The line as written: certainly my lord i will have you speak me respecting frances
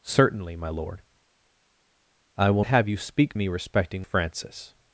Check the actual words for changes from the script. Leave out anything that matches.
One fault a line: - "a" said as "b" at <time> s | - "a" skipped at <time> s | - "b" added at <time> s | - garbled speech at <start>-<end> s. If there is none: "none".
none